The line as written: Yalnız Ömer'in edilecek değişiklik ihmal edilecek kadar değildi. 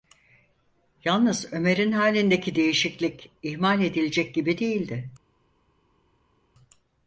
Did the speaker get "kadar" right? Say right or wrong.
wrong